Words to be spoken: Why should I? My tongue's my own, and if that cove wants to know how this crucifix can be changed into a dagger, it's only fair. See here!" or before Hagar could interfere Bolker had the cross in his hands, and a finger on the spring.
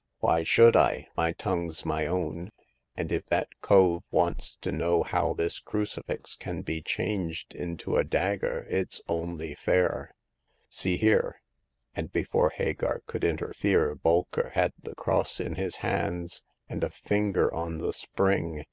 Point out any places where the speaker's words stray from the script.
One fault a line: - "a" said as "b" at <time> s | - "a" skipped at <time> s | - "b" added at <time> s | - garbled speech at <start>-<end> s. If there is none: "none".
- "or" said as "and" at 11.9 s